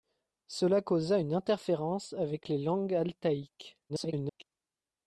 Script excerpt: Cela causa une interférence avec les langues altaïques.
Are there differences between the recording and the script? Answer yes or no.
yes